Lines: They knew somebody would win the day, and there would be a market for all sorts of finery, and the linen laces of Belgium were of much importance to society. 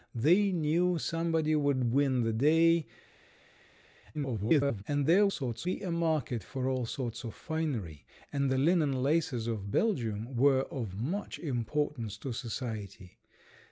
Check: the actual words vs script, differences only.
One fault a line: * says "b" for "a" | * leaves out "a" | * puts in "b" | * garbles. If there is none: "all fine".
* garbles
* says "sorts" for "would"